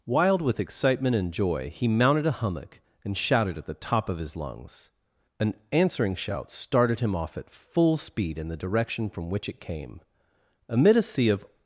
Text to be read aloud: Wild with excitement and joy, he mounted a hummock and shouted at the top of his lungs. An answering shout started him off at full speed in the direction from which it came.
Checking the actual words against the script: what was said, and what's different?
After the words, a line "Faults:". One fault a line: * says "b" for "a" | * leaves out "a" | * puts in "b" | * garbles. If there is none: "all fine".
Wild with excitement and joy, he mounted a hummock and shouted at the top of his lungs. An answering shout started him off at full speed in the direction from which it came. Amid a sea of
Faults:
* puts in "Amid a sea of"